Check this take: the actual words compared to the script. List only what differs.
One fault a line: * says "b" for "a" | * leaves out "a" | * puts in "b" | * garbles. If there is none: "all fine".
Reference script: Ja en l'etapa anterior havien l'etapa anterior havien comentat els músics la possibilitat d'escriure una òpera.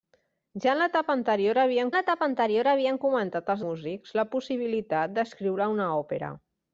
all fine